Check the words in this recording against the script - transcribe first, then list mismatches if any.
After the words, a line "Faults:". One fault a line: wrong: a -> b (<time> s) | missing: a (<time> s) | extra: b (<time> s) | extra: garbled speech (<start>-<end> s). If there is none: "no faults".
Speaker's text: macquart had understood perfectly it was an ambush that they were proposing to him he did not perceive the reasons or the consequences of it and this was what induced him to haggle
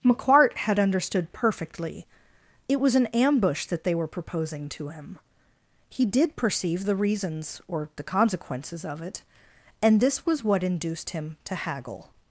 macquart had understood perfectly it was an ambush that they were proposing to him he did perceive the reasons or the consequences of it and this was what induced him to haggle
Faults:
missing: not (6.3 s)